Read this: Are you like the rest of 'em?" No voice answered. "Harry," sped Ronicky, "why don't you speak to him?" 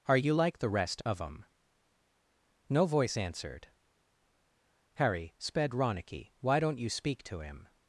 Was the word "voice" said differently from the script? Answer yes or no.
no